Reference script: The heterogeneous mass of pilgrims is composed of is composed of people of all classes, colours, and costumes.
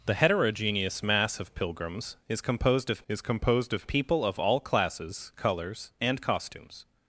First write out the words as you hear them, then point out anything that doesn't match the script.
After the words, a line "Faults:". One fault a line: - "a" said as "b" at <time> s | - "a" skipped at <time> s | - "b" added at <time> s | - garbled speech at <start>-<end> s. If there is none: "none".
The heterogeneous mass of pilgrims is composed of is composed of people of all classes, colours, and costumes.
Faults:
none